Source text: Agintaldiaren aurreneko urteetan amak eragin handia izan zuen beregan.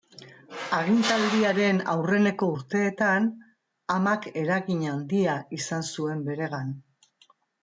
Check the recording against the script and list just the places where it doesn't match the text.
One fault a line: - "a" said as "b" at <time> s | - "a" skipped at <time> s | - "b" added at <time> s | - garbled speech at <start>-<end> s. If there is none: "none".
none